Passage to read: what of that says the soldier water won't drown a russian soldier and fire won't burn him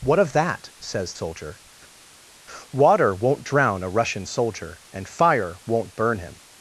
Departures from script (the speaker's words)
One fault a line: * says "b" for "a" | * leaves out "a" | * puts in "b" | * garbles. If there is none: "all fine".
* leaves out "the"